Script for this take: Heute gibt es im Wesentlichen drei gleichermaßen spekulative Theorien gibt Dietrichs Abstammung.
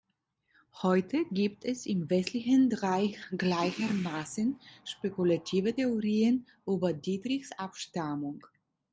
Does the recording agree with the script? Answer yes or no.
no